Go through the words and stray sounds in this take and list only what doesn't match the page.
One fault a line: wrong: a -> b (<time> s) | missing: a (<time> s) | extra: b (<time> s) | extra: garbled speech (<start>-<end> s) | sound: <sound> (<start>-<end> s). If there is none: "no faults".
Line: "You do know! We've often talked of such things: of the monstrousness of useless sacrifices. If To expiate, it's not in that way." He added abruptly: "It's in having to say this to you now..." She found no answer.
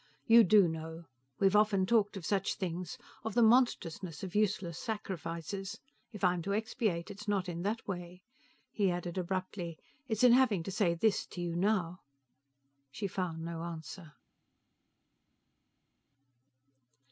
extra: I'm (6.2 s)